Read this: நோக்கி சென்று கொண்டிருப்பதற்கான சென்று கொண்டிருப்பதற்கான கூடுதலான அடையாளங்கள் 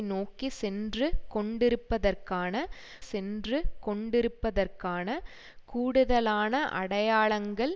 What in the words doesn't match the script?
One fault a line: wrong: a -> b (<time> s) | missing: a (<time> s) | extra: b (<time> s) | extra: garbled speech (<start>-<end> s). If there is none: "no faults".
no faults